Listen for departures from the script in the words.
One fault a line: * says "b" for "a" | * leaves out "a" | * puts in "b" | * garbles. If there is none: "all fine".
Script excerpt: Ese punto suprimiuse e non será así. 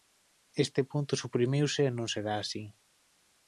* says "Este" for "Ese"